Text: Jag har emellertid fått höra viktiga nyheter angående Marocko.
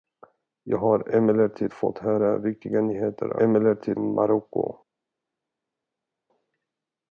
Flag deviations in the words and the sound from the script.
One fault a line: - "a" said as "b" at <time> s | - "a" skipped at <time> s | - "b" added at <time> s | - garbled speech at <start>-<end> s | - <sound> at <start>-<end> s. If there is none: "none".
- "angående" said as "emellertid" at 3.4 s